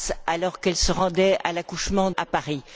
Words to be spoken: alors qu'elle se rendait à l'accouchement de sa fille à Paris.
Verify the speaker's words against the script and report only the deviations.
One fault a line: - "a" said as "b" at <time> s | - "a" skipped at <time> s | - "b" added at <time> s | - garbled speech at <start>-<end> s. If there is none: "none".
- "de sa fille" skipped at 2.1 s